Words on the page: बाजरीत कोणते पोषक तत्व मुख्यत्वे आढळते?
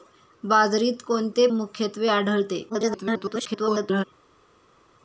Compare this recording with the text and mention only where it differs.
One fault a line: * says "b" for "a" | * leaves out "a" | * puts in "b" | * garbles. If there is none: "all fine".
* leaves out "पोषक तत्व"
* garbles